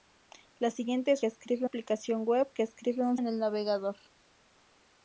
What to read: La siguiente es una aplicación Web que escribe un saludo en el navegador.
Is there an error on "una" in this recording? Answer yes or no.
yes